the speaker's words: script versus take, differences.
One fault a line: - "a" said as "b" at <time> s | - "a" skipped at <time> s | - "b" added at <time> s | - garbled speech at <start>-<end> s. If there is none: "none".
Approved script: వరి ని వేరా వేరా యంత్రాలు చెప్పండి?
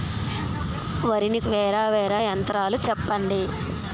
none